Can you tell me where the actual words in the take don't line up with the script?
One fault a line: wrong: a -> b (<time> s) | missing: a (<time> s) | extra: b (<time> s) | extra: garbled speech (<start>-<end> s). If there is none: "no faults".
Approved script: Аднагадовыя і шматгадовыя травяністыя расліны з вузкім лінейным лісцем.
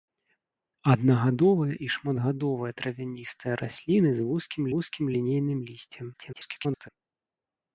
extra: вузкім (4.8 s)
extra: garbled speech (6.1-6.9 s)